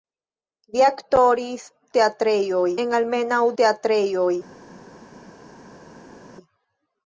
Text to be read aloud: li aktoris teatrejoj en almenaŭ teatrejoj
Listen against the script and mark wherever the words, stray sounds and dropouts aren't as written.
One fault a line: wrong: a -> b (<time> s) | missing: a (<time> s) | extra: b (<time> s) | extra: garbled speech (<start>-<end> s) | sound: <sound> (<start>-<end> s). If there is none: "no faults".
no faults